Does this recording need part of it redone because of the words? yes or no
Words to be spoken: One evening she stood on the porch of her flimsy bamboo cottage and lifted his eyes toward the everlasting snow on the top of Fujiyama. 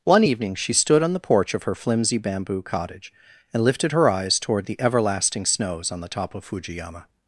yes